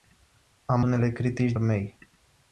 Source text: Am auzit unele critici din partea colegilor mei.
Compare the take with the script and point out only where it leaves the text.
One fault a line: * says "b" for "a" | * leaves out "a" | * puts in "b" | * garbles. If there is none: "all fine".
* leaves out "auzit"
* leaves out "din partea colegilor"